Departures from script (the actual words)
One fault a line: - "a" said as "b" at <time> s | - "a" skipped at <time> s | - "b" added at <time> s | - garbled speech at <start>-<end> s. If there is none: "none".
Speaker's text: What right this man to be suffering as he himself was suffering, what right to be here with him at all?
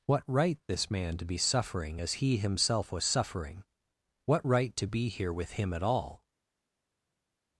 none